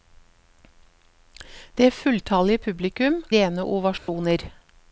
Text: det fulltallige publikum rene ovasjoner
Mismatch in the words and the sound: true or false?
true